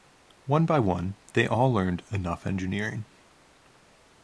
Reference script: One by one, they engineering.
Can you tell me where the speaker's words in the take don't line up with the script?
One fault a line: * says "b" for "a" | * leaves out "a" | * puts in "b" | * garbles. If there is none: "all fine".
* puts in "all learned enough"